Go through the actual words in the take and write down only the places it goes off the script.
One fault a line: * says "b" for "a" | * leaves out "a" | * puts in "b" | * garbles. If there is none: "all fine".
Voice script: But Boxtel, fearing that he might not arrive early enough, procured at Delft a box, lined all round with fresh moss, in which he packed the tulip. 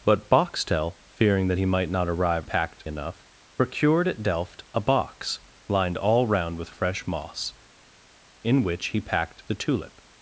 * says "packed" for "early"